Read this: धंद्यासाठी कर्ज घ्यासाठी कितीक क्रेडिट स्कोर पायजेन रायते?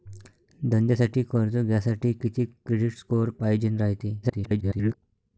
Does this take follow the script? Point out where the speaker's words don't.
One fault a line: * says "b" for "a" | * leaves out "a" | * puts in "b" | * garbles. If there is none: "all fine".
* garbles